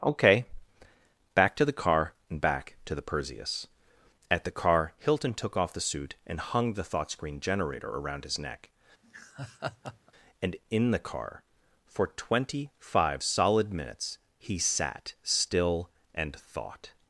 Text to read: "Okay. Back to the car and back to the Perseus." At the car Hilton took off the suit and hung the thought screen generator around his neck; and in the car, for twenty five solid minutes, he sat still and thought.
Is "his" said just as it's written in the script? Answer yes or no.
yes